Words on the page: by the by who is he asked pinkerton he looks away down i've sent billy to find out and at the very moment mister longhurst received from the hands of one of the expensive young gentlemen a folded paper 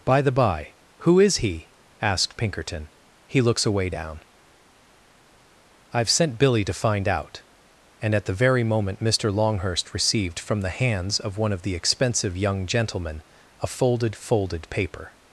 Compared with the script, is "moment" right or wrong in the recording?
right